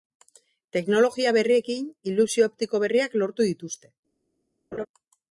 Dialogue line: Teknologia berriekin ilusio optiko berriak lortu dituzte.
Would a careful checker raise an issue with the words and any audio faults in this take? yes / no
yes